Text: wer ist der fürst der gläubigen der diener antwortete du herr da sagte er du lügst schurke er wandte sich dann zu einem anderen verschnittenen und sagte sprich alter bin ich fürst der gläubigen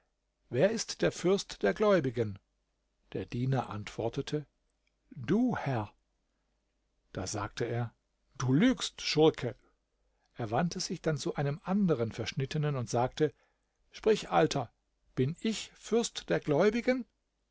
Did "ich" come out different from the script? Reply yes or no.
no